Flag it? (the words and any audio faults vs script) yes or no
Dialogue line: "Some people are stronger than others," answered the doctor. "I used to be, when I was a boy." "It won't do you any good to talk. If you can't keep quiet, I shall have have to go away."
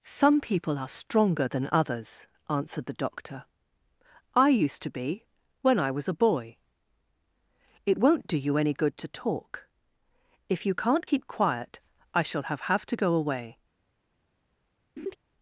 yes